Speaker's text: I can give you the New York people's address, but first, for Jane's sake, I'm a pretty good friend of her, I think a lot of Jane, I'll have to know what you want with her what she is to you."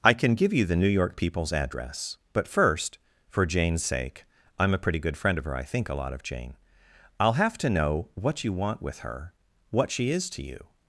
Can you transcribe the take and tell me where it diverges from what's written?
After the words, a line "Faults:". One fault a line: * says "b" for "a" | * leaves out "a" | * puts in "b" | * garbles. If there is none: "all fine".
I can give you the New York people's address, but first, for Jane's sake, I'm a pretty good friend of her, I think a lot of Jane, I'll have to know what you want with her what she is to you."
Faults:
all fine